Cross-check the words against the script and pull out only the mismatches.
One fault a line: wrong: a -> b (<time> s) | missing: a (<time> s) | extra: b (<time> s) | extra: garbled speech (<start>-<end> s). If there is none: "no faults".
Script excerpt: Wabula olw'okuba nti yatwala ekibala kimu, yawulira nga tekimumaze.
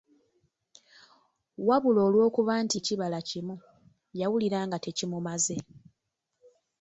missing: yatwala (2.8 s)